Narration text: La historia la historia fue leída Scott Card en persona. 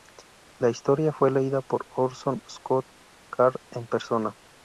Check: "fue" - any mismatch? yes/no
yes